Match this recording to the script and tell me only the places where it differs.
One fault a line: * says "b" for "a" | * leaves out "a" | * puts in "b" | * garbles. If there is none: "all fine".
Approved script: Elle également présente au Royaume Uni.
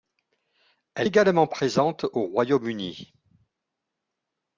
all fine